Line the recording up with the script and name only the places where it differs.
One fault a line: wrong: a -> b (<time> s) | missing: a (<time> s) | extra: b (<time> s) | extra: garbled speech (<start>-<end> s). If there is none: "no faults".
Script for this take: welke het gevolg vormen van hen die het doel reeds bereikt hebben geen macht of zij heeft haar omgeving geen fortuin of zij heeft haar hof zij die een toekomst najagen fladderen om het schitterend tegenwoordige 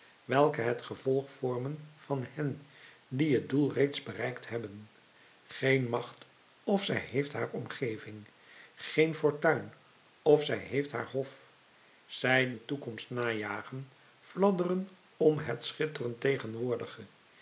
missing: die (12.5 s)